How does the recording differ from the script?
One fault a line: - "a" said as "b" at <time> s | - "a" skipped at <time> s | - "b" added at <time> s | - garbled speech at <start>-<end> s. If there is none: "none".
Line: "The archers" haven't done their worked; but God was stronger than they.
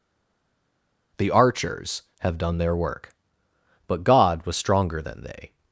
- "haven't" said as "have" at 2.2 s
- "worked" said as "work" at 2.7 s